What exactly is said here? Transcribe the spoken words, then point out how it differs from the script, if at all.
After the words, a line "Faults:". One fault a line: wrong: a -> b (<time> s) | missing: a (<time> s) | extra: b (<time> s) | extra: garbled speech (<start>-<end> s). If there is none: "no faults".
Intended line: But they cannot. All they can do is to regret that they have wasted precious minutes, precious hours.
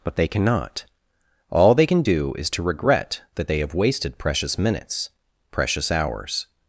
But they cannot. All they can do is to regret that they have wasted precious minutes, precious hours.
Faults:
no faults